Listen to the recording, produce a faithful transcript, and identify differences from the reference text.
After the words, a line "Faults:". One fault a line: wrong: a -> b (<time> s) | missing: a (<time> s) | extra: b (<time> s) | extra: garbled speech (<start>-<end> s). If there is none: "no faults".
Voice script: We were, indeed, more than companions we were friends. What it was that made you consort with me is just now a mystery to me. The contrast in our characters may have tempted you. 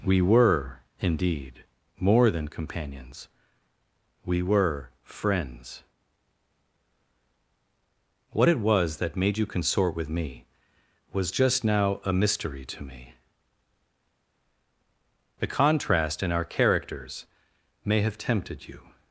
We were, indeed, more than companions we were friends. What it was that made you consort with me was just now a mystery to me. The contrast in our characters may have tempted you.
Faults:
wrong: is -> was (11.1 s)